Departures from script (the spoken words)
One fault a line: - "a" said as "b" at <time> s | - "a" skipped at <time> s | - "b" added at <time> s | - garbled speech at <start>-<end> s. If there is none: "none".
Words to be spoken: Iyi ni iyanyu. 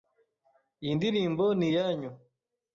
- "ndirimbo" added at 1.0 s